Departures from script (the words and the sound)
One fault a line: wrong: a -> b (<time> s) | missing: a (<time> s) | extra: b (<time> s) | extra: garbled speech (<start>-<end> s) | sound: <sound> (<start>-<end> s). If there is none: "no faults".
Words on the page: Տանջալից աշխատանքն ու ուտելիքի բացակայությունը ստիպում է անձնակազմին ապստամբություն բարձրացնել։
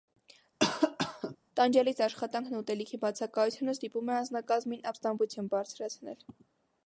sound: cough (0.6-1.4 s)